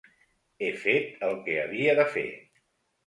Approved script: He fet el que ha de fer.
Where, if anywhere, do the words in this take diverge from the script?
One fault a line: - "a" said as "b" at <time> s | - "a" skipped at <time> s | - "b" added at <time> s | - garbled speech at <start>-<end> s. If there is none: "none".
- "ha" said as "havia" at 1.6 s